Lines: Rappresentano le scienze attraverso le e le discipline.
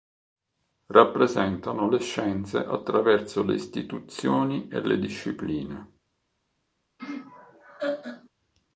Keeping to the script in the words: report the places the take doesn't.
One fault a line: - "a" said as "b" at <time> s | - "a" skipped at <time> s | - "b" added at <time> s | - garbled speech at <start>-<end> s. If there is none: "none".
- "istituzioni" added at 3.5 s